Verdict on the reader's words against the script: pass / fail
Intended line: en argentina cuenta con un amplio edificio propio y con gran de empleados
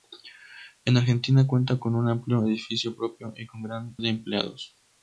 pass